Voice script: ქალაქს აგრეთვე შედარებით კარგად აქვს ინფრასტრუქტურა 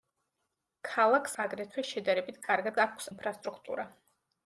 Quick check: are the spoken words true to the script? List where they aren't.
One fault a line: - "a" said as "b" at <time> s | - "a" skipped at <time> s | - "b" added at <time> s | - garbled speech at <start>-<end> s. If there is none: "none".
none